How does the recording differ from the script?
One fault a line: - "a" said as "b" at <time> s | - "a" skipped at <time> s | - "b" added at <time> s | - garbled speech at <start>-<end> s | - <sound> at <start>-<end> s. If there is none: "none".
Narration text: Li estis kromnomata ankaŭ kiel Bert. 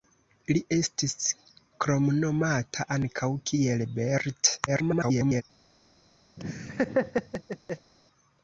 - garbled speech at 4.7-5.4 s
- laugh at 6.4-7.9 s